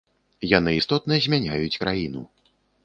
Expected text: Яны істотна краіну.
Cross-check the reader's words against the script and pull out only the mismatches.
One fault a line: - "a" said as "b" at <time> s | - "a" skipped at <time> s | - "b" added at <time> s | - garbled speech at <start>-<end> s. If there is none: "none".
- "змяняюць" added at 1.3 s